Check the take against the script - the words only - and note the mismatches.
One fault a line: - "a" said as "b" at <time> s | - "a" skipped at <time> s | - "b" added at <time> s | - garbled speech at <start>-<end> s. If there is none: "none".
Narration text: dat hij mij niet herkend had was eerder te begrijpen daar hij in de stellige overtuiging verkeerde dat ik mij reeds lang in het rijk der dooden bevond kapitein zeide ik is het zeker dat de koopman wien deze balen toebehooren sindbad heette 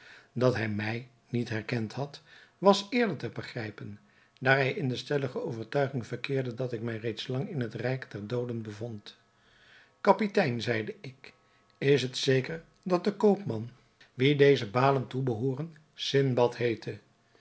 none